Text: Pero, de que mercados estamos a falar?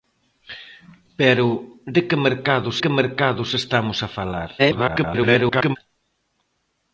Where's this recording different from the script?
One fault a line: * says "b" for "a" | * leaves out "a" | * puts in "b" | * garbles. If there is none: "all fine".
* puts in "que mercados"
* garbles